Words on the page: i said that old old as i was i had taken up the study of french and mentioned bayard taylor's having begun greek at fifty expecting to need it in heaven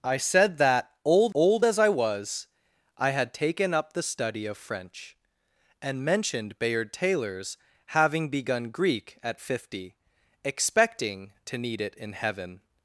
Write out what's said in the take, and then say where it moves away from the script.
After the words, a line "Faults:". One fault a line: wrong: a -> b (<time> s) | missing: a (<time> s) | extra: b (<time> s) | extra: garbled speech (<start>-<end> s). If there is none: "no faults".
i said that old old as i was i had taken up the study of french and mentioned bayard taylor's having begun greek at fifty expecting to need it in heaven
Faults:
no faults